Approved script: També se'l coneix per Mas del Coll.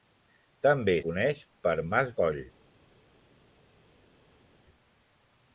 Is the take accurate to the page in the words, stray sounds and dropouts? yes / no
no